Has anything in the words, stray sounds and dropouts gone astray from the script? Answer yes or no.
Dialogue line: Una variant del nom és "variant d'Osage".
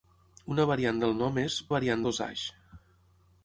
no